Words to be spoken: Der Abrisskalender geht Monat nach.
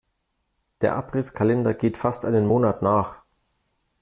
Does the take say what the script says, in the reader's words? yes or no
no